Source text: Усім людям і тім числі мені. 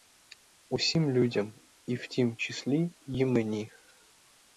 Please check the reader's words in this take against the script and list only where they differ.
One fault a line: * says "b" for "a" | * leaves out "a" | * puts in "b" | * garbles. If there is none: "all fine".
* puts in "в"
* puts in "й"